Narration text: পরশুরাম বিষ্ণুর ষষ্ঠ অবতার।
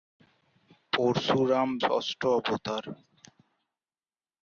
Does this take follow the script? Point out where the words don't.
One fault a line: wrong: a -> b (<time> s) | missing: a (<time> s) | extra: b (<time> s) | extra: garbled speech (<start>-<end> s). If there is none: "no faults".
missing: বিষ্ণুর (1.7 s)